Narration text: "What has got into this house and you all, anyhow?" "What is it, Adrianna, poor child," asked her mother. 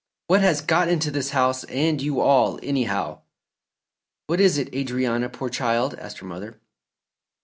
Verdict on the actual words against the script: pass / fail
pass